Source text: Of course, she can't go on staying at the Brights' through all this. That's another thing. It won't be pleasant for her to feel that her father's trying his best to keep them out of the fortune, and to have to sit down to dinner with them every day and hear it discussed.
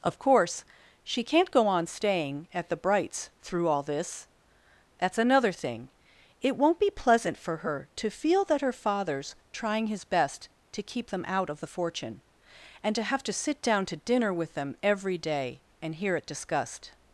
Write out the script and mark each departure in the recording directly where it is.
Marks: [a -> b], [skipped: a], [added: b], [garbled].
Of course, she can't go on staying at the Brights' through all this. That's another thing. It won't be pleasant for her to feel that her father's trying his best to keep them out of the fortune, and to have to sit down to dinner with them every day and hear it discussed.